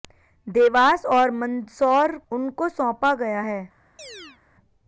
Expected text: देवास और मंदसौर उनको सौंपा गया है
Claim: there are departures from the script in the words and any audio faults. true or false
true